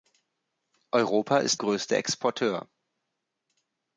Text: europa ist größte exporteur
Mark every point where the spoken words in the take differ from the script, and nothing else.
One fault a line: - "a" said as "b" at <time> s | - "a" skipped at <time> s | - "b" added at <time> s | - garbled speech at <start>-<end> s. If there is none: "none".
none